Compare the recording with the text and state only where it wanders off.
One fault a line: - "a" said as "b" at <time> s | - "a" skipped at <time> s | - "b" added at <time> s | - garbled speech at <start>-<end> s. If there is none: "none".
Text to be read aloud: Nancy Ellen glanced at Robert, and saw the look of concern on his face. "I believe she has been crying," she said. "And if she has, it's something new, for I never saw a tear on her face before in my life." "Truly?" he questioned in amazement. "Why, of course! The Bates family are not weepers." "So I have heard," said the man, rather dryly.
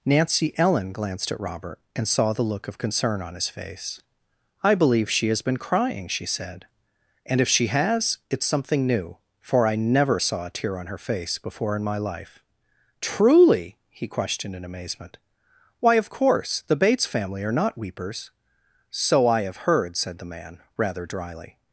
none